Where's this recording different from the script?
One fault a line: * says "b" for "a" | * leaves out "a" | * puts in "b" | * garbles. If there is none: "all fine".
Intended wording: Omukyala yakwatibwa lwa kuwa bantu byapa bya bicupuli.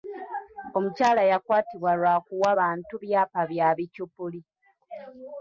all fine